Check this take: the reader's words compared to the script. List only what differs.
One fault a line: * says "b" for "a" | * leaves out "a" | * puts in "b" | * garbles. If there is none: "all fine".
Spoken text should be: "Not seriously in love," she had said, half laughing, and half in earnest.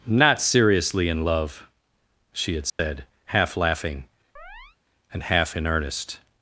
all fine